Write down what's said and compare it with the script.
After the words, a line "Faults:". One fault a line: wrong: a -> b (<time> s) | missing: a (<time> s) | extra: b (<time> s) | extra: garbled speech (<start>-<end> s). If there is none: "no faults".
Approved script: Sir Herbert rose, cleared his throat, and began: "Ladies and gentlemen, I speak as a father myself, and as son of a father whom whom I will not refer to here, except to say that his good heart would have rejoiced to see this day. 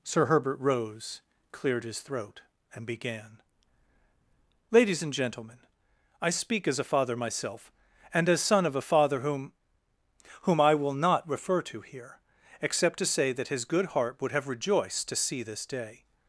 Sir Herbert rose, cleared his throat, and began: "Ladies and gentlemen, I speak as a father myself, and as son of a father whom whom I will not refer to here, except to say that his good heart would have rejoiced to see this day.
Faults:
no faults